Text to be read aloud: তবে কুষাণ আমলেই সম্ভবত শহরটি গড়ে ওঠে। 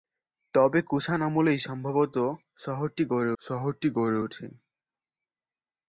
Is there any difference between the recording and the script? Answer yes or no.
yes